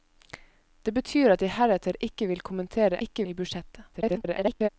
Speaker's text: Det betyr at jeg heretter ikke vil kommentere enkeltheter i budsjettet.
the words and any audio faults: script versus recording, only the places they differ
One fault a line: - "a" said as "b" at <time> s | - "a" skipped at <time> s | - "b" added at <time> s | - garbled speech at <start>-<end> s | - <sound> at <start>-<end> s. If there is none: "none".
- "enkeltheter" said as "ikke" at 3.0 s
- garbled speech at 3.9-4.7 s